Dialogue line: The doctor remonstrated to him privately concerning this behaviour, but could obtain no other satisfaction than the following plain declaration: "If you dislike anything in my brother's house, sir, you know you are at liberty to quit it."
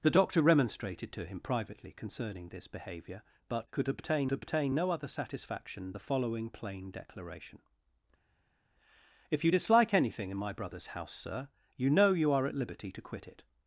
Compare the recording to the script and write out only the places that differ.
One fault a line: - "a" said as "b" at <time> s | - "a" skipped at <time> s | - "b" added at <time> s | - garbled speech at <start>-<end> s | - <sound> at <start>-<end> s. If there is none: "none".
- "obtain" added at 4.3 s
- "than" skipped at 5.9 s